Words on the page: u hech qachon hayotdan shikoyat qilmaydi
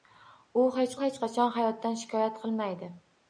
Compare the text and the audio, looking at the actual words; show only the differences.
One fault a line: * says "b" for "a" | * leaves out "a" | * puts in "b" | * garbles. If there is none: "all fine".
* puts in "hech"